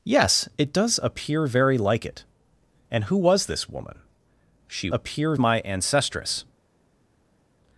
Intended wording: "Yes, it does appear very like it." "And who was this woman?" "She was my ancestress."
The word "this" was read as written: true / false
true